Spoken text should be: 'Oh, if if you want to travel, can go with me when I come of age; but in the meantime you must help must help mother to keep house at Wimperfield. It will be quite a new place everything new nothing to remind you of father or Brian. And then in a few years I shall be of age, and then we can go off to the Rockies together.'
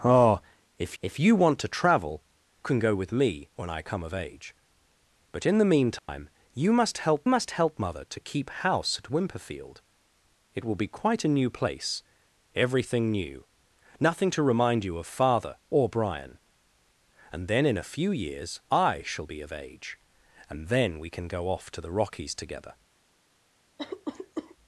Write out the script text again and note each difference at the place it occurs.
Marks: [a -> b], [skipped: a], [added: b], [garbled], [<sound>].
'Oh, if if you want to travel, can go with me when I come of age; but in the meantime [dropout] you must help must help mother to keep house at Wimperfield. It will be quite a new place everything new nothing to remind you of father or Brian. And then in a few years I shall be of age, and then we can go off to the Rockies together.' [cough]